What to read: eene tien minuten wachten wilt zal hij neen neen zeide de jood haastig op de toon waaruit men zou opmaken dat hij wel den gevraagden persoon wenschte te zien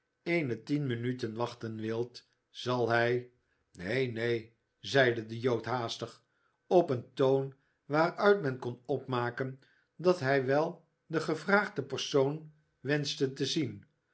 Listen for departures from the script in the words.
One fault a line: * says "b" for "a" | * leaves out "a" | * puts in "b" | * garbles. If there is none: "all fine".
* says "een" for "de"
* says "kon" for "zou"